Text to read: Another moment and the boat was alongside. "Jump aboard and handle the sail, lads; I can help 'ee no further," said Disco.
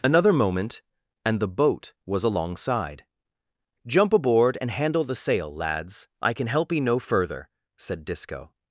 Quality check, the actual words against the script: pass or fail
pass